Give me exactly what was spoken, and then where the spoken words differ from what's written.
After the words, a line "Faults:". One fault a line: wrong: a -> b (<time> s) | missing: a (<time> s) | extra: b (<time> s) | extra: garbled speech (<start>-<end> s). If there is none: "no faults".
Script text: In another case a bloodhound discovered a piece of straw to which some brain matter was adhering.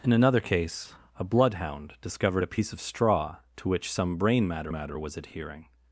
In another case a bloodhound discovered a piece of straw to which some brain matter matter was adhering.
Faults:
extra: matter (4.7 s)